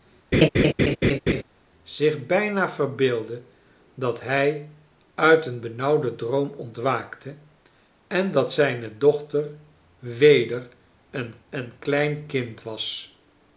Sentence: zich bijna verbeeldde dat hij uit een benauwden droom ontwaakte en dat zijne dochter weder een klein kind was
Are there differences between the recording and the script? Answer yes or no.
yes